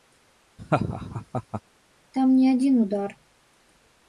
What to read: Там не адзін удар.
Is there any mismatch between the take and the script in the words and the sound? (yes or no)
yes